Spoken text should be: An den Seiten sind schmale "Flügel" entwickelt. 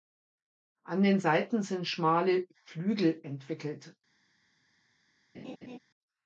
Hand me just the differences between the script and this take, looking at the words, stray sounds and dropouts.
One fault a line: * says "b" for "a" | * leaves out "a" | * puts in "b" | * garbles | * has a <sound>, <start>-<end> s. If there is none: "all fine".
* has a laugh, 5.3-5.8 s